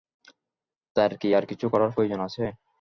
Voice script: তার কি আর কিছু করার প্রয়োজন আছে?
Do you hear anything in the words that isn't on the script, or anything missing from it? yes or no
no